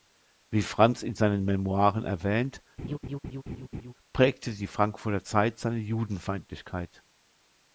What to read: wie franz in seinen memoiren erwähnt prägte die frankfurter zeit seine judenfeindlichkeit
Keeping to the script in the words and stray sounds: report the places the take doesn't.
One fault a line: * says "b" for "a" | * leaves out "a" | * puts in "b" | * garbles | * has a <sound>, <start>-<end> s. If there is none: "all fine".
* has a laugh, 2.8-3.9 s